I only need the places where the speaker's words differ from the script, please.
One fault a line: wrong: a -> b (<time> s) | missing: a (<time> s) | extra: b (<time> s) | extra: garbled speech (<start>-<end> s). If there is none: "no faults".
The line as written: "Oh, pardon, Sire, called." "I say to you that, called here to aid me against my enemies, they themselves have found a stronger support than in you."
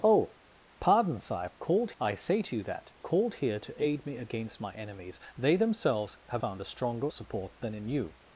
no faults